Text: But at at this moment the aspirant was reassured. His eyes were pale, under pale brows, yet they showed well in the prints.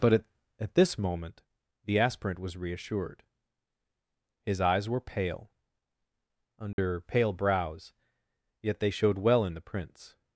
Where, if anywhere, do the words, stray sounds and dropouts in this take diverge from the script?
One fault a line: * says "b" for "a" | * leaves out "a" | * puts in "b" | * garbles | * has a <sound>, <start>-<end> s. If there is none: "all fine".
* has a dropout, 6.7-6.8 s